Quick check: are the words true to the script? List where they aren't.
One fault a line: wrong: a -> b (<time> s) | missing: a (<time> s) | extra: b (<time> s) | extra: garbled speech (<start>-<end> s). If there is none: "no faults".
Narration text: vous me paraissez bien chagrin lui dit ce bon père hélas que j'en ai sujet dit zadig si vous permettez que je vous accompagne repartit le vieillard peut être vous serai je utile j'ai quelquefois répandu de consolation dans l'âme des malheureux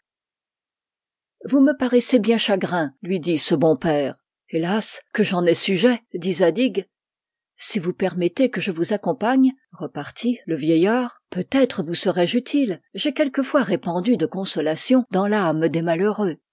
no faults